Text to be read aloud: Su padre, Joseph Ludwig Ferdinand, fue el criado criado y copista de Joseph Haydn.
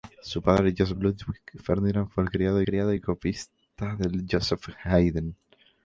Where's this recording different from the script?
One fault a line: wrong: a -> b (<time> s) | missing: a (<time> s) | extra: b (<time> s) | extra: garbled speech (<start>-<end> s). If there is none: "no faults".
no faults